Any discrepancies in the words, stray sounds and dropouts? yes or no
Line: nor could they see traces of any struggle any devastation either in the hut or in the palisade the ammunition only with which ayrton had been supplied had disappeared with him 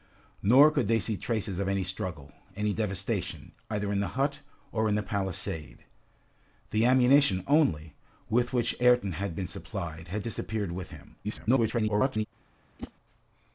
yes